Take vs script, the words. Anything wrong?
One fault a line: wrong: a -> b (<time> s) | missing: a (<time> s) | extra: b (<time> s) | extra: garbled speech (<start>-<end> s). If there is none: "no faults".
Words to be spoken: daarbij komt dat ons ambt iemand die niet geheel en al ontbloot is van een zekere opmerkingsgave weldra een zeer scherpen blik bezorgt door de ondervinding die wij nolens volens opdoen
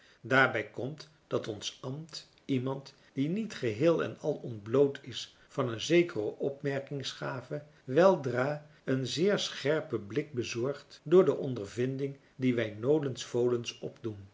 no faults